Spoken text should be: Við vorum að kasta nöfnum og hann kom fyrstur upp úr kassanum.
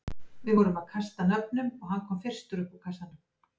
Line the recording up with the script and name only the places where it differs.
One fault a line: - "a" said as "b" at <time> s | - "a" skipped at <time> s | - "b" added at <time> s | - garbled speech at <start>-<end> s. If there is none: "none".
none